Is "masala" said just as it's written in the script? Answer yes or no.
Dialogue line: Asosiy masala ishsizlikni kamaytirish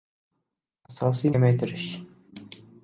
no